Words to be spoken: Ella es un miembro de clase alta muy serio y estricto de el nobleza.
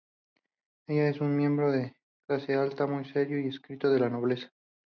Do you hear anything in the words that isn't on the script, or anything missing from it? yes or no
yes